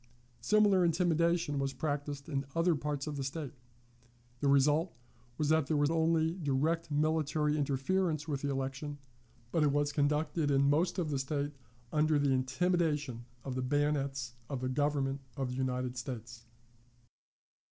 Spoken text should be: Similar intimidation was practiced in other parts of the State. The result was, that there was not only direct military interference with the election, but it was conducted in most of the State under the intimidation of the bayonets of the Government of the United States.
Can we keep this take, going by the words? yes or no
no